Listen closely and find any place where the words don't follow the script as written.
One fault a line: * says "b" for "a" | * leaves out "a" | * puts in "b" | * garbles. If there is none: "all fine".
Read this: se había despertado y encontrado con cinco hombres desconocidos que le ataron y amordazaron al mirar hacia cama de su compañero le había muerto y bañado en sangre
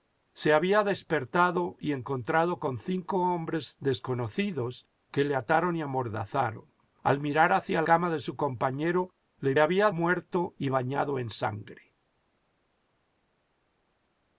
all fine